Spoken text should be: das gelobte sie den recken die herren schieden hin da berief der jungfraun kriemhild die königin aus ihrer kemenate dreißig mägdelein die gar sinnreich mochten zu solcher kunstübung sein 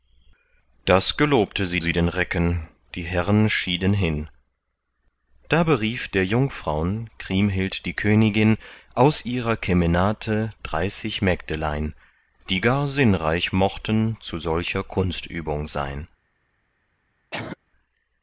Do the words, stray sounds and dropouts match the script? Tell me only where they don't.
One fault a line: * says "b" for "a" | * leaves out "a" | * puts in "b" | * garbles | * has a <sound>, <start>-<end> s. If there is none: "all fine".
* puts in "sie"
* has a cough, 17.3-17.6 s